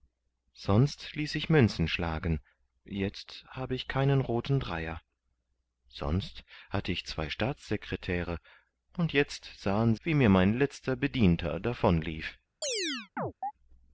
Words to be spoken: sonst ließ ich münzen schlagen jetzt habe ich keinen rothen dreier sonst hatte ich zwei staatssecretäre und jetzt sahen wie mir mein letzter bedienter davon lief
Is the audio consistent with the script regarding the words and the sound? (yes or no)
no